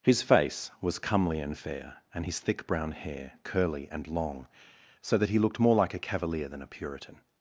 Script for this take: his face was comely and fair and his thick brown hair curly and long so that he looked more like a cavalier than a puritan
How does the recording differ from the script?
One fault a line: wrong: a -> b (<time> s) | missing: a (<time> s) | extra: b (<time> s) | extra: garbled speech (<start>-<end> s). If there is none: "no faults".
no faults